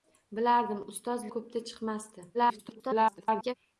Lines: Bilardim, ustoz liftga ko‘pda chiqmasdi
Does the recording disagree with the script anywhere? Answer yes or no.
yes